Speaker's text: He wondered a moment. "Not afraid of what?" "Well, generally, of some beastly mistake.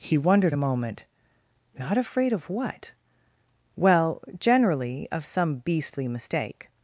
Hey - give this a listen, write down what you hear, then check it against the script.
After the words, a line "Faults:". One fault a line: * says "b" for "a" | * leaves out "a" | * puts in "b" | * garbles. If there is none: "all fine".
He wondered a moment. "Not afraid of what?" "Well, generally, of some beastly mistake.
Faults:
all fine